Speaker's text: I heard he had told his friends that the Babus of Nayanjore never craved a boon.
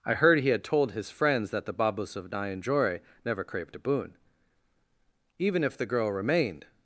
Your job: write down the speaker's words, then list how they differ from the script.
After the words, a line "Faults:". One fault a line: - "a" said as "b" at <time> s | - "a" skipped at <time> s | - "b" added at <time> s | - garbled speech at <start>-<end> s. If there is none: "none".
I heard he had told his friends that the Babus of Nayanjore never craved a boon. Even if the girl remained
Faults:
- "Even if the girl remained" added at 5.4 s